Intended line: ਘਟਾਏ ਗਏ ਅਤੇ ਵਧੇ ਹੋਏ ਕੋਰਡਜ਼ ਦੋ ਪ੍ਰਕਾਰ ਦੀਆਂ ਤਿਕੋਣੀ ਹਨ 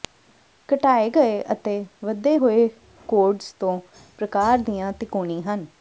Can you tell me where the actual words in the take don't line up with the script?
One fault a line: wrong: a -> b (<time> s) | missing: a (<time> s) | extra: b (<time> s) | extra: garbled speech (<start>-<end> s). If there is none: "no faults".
no faults